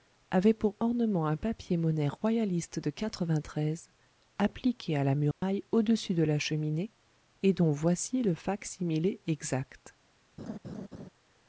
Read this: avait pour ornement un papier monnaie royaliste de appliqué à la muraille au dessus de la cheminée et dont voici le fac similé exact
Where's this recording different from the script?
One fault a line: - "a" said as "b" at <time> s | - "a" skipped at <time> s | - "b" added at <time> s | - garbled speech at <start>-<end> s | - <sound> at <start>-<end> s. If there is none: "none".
- dropout at 5.3-5.4 s
- laugh at 10.4-11.1 s